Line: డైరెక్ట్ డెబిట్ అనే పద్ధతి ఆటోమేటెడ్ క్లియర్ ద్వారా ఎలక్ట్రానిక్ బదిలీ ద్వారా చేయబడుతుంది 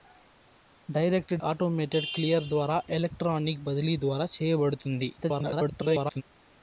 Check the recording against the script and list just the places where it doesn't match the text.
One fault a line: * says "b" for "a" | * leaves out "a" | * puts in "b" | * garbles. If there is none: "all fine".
* leaves out "డెబిట్ అనే పద్ధతి"
* garbles